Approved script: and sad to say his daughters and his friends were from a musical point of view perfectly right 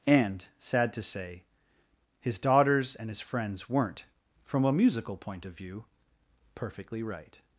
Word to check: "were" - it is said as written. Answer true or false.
false